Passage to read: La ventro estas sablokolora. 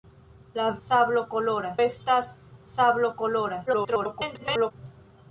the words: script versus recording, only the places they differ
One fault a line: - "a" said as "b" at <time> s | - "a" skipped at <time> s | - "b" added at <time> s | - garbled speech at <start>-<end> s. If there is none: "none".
- "ventro" said as "sablokolora" at 0.9 s
- garbled speech at 3.7-4.7 s